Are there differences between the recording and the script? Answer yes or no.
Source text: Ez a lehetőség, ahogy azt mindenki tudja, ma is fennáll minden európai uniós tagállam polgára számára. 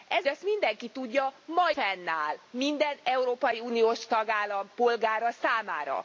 yes